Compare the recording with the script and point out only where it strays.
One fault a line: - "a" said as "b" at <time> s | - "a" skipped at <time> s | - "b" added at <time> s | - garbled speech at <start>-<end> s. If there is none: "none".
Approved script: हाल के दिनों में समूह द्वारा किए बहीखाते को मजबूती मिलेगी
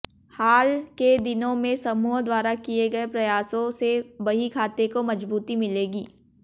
- "गए प्रयासों से" added at 2.9 s